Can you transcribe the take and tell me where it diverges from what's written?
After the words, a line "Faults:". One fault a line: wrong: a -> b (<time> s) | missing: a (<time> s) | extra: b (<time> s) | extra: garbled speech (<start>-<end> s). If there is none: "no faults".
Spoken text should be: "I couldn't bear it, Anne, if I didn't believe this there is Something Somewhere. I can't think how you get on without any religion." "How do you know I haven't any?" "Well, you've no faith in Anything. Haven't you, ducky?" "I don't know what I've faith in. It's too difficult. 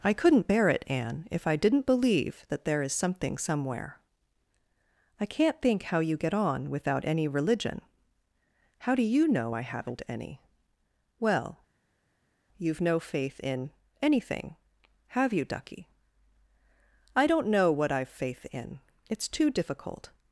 "I couldn't bear it, Anne, if I didn't believe that there is Something Somewhere. I can't think how you get on without any religion." "How do you know I haven't any?" "Well, you've no faith in Anything. Have you, ducky?" "I don't know what I've faith in. It's too difficult.
Faults:
wrong: this -> that (2.5 s)
wrong: Haven't -> Have (15.1 s)